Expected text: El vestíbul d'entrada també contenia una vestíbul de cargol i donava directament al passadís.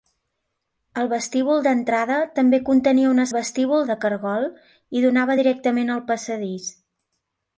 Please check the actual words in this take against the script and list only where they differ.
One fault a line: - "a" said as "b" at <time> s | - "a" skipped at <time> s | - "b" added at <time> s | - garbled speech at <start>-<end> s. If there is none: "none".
none